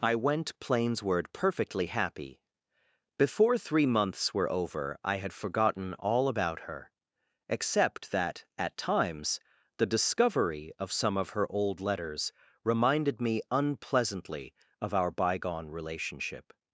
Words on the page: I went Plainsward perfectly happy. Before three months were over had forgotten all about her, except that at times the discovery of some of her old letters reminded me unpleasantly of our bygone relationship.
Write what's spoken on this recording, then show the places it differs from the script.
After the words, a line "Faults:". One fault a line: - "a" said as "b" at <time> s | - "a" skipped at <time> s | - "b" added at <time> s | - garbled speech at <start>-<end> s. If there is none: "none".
I went Plainsward perfectly happy. Before three months were over I had forgotten all about her, except that at times the discovery of some of her old letters reminded me unpleasantly of our bygone relationship.
Faults:
- "I" added at 5.0 s